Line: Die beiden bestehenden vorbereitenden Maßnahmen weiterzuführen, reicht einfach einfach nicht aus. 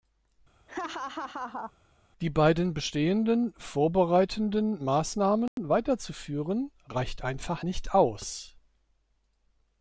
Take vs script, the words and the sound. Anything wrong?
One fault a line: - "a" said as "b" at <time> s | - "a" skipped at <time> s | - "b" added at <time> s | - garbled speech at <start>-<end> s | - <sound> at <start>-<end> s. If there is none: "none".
- laugh at 0.7-1.7 s
- dropout at 5.5-5.6 s
- "einfach" skipped at 7.7 s